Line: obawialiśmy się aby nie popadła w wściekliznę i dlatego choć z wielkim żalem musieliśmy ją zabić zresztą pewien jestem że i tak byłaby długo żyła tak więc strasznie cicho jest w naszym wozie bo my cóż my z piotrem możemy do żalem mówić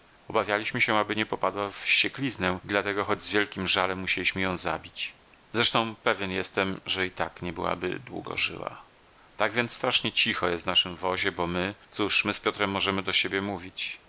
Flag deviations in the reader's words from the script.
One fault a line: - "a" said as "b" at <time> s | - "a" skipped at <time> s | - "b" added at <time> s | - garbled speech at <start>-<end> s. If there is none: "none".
- "nie" added at 7.4 s
- "żalem" said as "siebie" at 13.1 s